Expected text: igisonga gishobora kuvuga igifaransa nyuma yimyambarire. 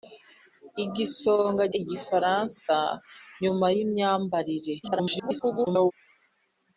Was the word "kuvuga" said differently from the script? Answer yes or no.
yes